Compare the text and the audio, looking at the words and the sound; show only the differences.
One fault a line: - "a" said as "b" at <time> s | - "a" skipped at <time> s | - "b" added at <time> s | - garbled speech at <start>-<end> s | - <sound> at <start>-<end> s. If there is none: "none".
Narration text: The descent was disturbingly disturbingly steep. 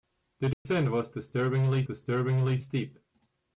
- dropout at 0.5-0.7 s